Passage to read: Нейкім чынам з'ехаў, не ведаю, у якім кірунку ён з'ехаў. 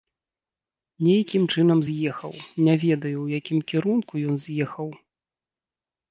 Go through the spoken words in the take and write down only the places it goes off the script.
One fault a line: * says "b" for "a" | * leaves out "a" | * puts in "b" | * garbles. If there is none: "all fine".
all fine